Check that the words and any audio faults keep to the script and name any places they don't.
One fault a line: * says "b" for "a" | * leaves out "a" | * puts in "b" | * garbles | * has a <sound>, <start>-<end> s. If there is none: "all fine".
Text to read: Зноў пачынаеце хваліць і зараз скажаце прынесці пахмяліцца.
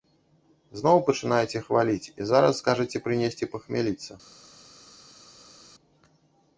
all fine